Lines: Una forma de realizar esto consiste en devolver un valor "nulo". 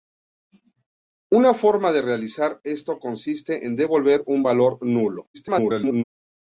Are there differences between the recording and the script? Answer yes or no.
yes